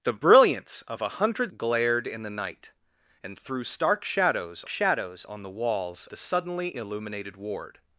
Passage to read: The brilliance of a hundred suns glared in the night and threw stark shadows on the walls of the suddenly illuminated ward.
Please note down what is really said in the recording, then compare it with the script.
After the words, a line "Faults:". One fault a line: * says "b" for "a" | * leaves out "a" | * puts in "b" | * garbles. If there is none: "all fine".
The brilliance of a hundred glared in the night and threw stark shadows shadows on the walls the suddenly illuminated ward.
Faults:
* leaves out "suns"
* puts in "shadows"
* leaves out "of"